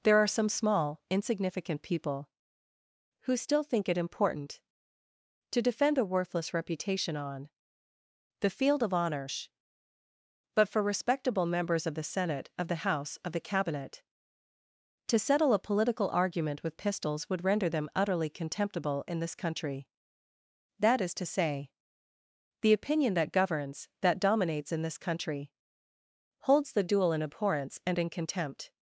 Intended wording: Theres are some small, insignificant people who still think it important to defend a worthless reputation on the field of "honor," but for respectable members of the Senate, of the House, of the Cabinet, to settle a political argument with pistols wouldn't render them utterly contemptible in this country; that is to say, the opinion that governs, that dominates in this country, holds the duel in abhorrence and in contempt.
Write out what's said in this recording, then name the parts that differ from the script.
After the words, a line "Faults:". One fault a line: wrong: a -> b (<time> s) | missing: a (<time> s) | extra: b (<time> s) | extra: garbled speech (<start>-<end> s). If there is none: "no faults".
There are some small, insignificant people who still think it important to defend a worthless reputation on the field of "honor," but for respectable members of the Senate, of the House, of the Cabinet, to settle a political argument with pistols would render them utterly contemptible in this country; that is to say, the opinion that governs, that dominates in this country, holds the duel in abhorrence and in contempt.
Faults:
wrong: Theres -> There (0.0 s)
wrong: wouldn't -> would (17.3 s)